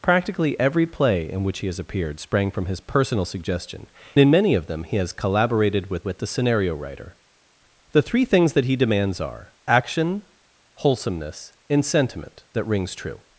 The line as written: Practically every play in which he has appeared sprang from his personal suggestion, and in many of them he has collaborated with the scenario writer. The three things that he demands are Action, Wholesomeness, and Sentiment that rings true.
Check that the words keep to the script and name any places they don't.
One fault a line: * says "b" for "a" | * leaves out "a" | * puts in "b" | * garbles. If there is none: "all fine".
* leaves out "and"
* puts in "with"